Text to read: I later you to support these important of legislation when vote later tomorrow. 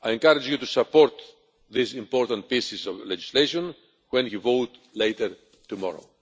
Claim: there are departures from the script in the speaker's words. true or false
true